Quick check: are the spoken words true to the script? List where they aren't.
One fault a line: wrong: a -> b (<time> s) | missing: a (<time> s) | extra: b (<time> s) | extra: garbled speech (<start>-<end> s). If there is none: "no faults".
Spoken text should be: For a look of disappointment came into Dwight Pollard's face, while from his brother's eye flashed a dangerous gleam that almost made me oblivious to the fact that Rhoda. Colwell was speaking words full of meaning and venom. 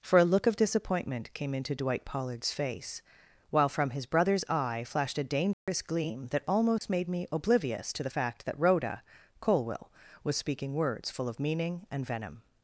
no faults